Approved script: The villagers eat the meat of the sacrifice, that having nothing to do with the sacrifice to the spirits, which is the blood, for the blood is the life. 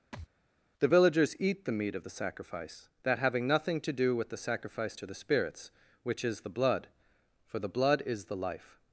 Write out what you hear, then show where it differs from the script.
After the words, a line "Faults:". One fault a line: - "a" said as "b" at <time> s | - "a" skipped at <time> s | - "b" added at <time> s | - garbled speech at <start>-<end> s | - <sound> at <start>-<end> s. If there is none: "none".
The villagers eat the meat of the sacrifice, that having nothing to do with the sacrifice to the spirits, which is the blood, for the blood is the life.
Faults:
- thud at 0.1-0.3 s